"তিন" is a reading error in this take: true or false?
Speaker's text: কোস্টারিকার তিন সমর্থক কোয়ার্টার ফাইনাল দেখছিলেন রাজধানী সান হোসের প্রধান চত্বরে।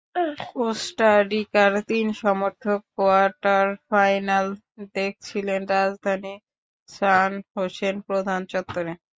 false